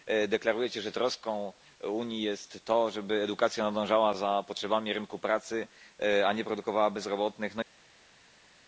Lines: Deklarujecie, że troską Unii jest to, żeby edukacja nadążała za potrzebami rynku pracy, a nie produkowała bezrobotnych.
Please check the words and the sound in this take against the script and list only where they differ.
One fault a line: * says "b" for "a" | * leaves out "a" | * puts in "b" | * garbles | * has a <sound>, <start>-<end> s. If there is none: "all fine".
all fine